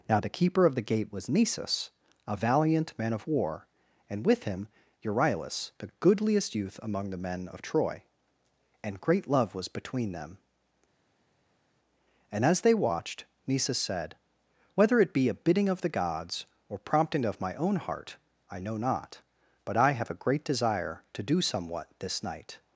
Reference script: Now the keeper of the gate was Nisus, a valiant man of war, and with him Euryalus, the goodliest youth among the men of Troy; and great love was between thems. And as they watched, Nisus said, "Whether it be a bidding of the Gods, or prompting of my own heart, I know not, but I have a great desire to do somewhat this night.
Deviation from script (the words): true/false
true